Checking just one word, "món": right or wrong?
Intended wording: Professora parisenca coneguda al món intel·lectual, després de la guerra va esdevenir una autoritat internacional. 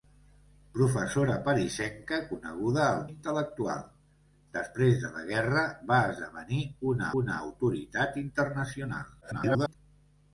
wrong